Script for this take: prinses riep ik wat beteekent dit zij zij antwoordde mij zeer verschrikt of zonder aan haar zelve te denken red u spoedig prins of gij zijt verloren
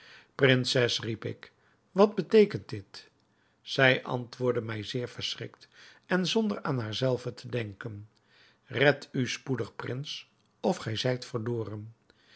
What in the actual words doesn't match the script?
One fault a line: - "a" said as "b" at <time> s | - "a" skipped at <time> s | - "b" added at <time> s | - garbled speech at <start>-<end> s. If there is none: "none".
- "zij" skipped at 4.0 s
- "of" said as "en" at 6.0 s